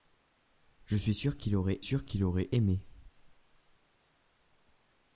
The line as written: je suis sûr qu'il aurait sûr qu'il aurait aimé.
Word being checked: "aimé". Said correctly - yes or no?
yes